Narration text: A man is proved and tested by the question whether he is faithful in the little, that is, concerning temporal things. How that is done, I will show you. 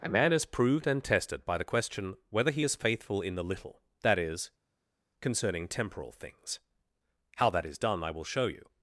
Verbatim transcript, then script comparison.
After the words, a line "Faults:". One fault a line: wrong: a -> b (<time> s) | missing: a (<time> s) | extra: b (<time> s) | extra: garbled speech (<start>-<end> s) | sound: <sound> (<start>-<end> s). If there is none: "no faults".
A man is proved and tested by the question whether he is faithful in the little, that is, concerning temporal things. How that is done, I will show you.
Faults:
no faults